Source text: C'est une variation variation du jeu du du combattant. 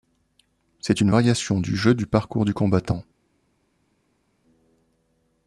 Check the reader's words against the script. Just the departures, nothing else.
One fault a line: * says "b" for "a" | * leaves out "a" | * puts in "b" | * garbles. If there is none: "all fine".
* leaves out "variation"
* puts in "parcours"